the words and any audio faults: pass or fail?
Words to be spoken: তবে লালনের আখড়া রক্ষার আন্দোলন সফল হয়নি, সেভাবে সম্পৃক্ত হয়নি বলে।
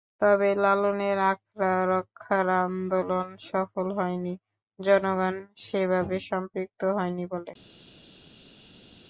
fail